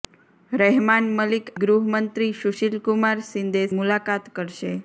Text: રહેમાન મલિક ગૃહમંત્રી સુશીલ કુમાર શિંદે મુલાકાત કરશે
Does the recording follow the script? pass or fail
pass